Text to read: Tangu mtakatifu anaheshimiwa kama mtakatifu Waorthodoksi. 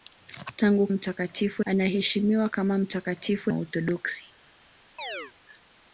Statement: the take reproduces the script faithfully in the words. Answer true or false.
true